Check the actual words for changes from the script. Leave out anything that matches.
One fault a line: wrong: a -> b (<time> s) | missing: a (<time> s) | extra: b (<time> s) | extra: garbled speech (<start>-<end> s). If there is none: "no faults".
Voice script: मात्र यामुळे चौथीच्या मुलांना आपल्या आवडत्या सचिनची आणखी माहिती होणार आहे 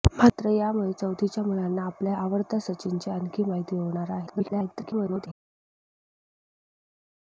extra: garbled speech (4.3-5.3 s)